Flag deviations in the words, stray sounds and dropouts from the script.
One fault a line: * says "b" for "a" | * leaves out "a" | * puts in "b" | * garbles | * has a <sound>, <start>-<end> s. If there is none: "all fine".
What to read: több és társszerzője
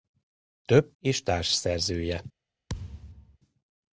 * has a thud, 2.7-3.4 s